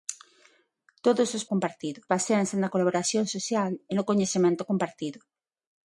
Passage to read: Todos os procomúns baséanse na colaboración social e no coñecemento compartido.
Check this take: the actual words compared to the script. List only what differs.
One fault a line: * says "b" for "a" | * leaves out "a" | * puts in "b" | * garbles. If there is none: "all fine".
* says "compartido" for "procomúns"